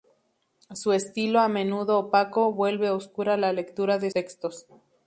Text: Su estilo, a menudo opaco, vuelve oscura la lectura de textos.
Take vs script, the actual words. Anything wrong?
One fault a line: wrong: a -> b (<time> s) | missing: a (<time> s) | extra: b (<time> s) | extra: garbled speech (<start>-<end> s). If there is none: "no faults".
no faults